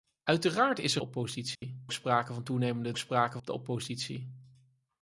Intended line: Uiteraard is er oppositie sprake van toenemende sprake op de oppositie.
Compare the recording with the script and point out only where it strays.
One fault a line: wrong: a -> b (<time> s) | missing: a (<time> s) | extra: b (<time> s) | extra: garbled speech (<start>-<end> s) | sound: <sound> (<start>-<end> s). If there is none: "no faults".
sound: dropout (1.5-1.6 s)